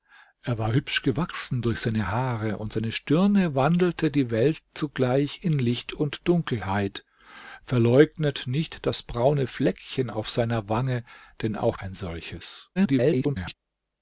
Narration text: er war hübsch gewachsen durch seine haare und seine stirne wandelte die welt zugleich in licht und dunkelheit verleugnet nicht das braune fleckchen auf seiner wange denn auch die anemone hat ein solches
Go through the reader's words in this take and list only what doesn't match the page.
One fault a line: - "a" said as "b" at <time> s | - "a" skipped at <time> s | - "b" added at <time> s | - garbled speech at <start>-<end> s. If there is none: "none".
- "die anemone hat" skipped at 11.8 s
- garbled speech at 12.8-13.5 s